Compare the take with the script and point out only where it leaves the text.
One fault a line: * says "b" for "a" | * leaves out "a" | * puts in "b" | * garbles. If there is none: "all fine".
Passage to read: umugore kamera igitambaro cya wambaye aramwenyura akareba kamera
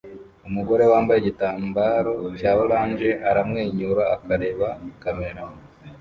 * says "wambaye" for "kamera"
* says "orange" for "wambaye"